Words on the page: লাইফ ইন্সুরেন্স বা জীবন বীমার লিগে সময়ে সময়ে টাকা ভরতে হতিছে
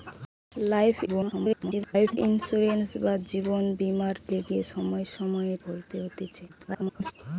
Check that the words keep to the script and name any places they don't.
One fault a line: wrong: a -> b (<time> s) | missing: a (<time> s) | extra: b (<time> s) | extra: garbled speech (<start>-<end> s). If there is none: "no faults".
extra: garbled speech (1.1-2.2 s)
missing: টাকা (5.5 s)
extra: garbled speech (6.5-7.1 s)